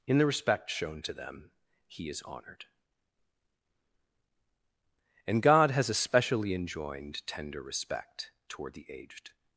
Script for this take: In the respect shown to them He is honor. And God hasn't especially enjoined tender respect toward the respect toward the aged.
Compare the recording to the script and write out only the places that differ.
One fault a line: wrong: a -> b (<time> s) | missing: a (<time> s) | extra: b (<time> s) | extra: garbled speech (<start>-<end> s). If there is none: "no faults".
wrong: honor -> honored (2.2 s)
wrong: hasn't -> has (5.7 s)
missing: respect toward the (8.9 s)